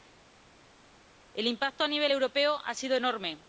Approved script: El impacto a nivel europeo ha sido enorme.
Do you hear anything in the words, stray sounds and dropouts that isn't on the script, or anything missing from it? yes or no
no